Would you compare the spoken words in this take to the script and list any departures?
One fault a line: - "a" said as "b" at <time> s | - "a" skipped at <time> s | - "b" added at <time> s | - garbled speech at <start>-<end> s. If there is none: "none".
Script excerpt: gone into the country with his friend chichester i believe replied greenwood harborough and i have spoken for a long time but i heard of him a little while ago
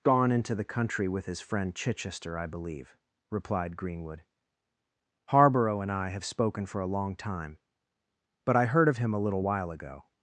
none